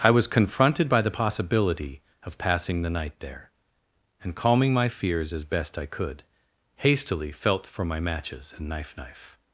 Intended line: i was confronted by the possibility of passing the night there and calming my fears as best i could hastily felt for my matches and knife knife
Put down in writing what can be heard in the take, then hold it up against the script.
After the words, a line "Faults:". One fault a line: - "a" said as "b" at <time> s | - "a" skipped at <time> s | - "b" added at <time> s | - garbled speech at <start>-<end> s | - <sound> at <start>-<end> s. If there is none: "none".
i was confronted by the possibility of passing the night there and calming my fears as best i could hastily felt for my matches and knife knife
Faults:
none